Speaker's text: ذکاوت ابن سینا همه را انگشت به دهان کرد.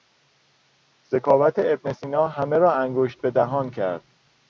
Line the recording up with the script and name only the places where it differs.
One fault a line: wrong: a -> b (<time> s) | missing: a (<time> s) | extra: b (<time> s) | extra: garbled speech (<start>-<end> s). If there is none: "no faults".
no faults